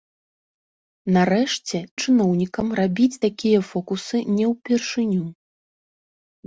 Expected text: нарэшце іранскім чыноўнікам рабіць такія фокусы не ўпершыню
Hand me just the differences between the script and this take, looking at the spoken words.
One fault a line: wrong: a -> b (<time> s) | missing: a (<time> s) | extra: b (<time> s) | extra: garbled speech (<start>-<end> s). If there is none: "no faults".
missing: іранскім (1.8 s)